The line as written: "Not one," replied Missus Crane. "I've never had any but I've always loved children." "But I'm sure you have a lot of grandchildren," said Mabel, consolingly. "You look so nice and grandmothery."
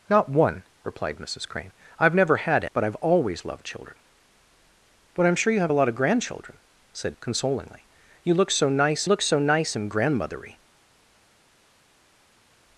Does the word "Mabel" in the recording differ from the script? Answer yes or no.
yes